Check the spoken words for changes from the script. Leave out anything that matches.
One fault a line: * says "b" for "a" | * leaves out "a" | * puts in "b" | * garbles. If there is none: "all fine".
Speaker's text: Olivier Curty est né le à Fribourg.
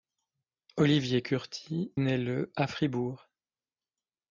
* leaves out "est"